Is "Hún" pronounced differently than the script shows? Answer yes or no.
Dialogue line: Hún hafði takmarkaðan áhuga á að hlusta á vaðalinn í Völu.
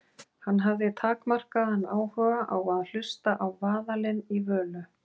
yes